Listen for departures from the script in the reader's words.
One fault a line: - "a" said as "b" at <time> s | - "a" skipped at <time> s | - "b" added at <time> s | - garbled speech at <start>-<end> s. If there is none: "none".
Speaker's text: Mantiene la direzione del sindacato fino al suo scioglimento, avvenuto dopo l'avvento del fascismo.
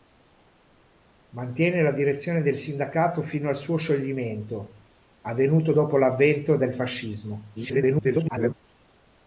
- garbled speech at 7.6-8.5 s